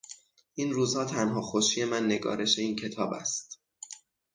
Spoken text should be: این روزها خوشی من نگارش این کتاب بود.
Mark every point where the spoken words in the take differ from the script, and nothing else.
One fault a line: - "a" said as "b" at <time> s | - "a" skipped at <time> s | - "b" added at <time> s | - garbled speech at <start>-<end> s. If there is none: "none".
- "تنها" added at 1.1 s
- "بود" said as "است" at 3.1 s